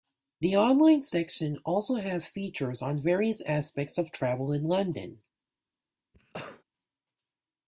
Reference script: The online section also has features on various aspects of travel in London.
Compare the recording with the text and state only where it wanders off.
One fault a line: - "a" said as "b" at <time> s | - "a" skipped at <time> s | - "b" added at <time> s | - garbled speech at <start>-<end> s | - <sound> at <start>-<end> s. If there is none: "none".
- cough at 6.1-6.6 s